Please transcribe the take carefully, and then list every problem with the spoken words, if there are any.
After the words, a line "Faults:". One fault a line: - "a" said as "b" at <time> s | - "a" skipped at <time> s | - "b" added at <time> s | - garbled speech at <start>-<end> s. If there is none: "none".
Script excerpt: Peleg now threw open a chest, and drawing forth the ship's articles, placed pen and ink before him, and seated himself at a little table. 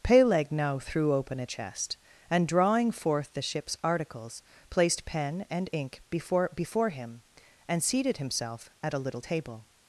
Peleg now threw open a chest, and drawing forth the ship's articles, placed pen and ink before before him, and seated himself at a little table.
Faults:
- "before" added at 6.5 s